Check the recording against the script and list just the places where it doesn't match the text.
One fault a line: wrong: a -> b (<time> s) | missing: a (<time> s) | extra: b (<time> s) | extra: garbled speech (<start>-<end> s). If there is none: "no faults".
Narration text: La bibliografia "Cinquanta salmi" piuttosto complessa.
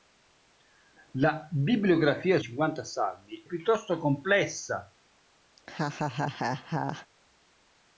no faults